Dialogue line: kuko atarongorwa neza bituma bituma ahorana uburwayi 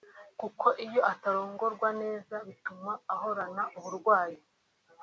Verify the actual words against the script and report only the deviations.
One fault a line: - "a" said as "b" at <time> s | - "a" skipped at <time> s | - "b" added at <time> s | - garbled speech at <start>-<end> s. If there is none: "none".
- "iyo" added at 0.8 s
- "bituma" skipped at 2.9 s